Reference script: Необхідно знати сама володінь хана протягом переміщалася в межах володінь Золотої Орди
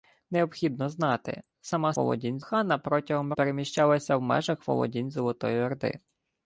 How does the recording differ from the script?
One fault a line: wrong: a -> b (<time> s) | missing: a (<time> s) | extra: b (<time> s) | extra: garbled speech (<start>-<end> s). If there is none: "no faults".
no faults